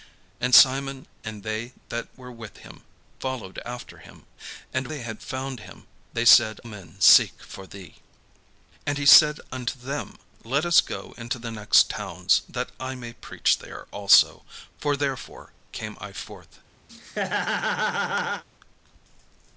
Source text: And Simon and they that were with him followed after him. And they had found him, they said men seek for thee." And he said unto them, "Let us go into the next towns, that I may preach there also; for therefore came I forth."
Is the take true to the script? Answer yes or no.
yes